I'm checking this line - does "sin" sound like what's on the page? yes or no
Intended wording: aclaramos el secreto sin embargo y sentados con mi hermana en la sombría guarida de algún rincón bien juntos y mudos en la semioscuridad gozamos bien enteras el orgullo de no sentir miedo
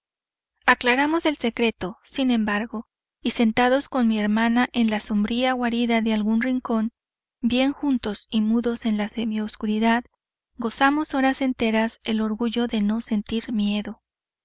yes